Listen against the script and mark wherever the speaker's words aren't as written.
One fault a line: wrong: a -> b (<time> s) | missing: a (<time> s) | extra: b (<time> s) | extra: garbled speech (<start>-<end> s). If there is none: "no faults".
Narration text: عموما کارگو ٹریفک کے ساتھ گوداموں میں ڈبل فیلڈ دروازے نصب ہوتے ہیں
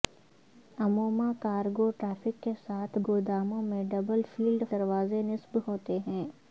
no faults